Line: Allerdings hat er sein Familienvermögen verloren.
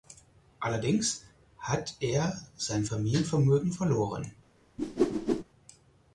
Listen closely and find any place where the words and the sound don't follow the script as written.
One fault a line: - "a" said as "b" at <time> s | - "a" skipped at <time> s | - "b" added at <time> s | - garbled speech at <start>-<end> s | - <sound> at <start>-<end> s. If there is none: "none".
- whoosh at 4.8-5.4 s